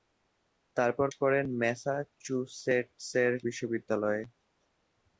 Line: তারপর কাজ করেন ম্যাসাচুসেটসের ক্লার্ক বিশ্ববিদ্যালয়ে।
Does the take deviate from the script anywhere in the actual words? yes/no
yes